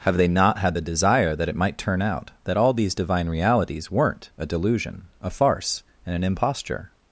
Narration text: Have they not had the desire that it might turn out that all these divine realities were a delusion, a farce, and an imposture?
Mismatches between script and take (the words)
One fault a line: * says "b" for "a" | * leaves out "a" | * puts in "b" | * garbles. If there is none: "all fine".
* says "weren't" for "were"